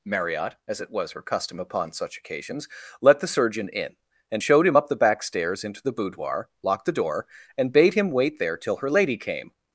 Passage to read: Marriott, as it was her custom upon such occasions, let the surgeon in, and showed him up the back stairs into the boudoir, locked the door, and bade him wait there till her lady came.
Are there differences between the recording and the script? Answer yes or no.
no